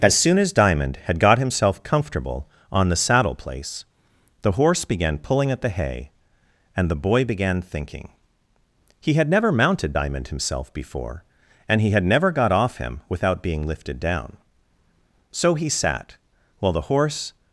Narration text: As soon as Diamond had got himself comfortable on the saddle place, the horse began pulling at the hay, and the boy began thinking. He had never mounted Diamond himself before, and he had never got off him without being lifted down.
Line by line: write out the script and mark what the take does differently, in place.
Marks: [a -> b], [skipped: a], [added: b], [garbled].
As soon as Diamond had got himself comfortable on the saddle place, the horse began pulling at the hay, and the boy began thinking. He had never mounted Diamond himself before, and he had never got off him without being lifted down. [added: So he sat while the horse]